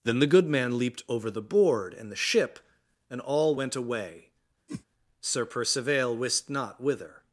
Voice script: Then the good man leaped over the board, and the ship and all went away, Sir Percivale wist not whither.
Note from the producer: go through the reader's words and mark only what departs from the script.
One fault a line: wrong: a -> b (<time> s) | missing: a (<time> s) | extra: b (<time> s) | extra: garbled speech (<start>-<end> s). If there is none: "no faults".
no faults